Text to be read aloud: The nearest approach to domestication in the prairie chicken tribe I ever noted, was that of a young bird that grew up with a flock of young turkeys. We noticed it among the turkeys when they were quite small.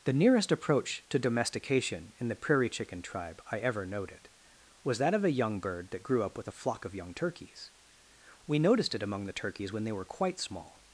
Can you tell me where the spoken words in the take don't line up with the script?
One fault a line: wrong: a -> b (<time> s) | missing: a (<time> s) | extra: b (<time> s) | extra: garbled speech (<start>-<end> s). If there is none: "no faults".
no faults